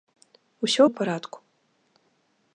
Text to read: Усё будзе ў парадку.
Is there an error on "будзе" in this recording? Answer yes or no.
yes